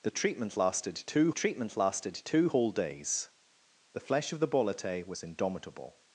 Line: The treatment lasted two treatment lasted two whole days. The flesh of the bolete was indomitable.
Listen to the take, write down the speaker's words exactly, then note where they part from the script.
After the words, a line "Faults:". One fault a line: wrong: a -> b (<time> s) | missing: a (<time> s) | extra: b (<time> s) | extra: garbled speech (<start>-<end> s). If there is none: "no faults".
The treatment lasted two treatment lasted two whole days. The flesh of the bolete was indomitable.
Faults:
no faults